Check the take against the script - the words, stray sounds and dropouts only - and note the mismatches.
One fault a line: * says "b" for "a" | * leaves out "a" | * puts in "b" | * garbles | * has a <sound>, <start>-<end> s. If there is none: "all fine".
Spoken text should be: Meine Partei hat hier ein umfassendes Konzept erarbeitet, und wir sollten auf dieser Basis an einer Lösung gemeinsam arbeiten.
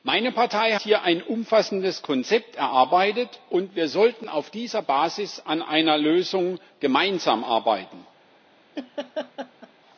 * leaves out "hat"
* has a laugh, 8.7-9.7 s